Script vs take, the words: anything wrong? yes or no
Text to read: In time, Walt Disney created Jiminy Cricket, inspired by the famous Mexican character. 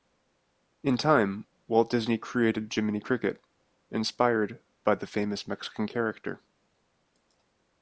no